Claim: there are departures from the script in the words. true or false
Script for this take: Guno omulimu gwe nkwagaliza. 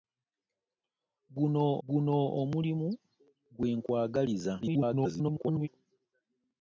true